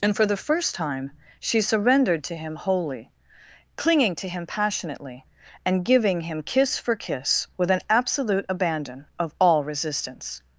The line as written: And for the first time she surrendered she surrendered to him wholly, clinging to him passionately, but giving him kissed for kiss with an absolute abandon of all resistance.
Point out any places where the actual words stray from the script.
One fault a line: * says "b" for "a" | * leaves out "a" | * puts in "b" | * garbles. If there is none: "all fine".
* leaves out "she surrendered"
* says "and" for "but"
* says "kiss" for "kissed"